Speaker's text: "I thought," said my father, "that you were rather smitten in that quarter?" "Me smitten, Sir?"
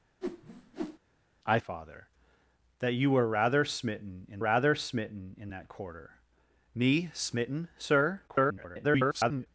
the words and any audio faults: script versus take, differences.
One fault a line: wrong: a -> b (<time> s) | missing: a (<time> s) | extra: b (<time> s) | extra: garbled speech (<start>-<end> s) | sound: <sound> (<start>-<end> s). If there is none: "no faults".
sound: whoosh (0.2-1.0 s)
missing: thought said my (1.6 s)
extra: rather smitten in (4.4 s)
extra: garbled speech (8.3-9.5 s)